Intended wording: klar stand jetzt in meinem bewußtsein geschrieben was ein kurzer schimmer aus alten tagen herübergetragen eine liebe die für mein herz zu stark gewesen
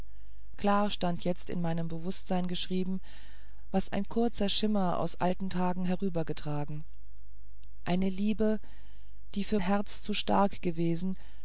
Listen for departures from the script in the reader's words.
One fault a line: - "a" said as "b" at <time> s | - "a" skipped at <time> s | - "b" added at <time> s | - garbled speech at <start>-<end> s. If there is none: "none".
- "mein" skipped at 9.6 s